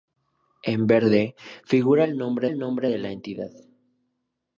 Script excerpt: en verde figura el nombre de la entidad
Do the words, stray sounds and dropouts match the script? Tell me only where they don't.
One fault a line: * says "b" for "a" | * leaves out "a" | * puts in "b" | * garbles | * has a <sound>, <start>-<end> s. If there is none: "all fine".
* puts in "el nombre"